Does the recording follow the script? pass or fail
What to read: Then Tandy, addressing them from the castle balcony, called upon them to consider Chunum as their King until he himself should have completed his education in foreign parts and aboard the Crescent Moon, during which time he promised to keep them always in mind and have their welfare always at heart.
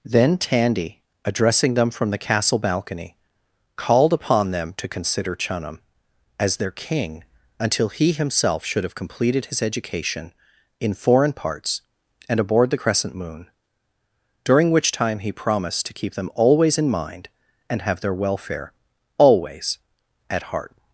pass